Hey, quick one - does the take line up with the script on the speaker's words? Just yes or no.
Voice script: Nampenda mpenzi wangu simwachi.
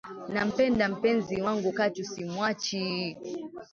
no